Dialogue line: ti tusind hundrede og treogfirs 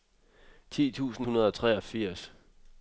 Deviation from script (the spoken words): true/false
false